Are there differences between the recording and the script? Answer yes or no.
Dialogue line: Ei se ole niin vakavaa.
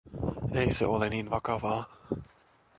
no